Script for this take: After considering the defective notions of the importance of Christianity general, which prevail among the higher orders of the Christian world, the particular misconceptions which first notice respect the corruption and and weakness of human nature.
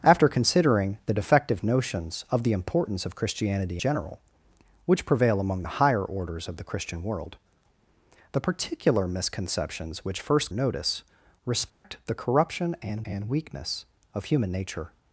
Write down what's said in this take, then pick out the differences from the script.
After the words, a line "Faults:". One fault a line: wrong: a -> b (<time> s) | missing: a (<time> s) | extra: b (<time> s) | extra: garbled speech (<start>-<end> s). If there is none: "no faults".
After considering the defective notions of the importance of Christianity general, which prevail among the higher orders of the Christian world, the particular misconceptions which first notice respect the corruption and and weakness of human nature.
Faults:
no faults